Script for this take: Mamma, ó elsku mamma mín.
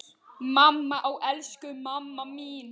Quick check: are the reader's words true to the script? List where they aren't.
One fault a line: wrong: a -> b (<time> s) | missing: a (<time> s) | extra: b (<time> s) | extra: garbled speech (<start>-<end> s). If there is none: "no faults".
no faults